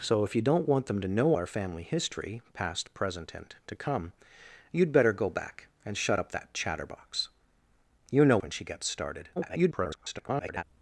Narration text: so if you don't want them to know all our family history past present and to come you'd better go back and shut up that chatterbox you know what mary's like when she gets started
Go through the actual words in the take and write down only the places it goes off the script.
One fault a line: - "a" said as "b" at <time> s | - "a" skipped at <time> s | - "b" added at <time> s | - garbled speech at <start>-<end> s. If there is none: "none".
- "all" skipped at 1.4 s
- "what mary's like" skipped at 8.4 s
- garbled speech at 9.4-10.6 s